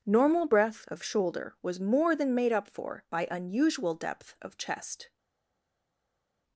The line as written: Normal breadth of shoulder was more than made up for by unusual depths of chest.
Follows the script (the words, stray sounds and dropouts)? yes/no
no